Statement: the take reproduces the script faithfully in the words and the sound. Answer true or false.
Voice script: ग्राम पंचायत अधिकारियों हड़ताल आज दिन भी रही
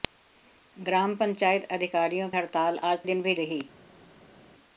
true